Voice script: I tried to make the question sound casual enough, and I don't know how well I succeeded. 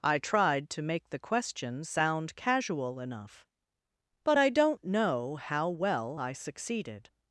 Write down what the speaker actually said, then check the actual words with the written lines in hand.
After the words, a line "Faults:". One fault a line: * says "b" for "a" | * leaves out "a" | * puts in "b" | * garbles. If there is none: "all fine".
I tried to make the question sound casual enough, but I don't know how well I succeeded.
Faults:
* says "but" for "and"